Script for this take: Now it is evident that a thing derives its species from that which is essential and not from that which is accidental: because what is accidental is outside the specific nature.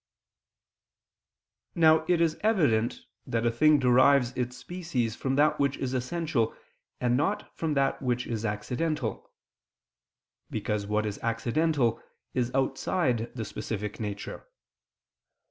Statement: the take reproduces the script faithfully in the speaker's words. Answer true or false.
true